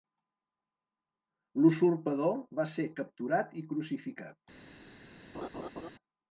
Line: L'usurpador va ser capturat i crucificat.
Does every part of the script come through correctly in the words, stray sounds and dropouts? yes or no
no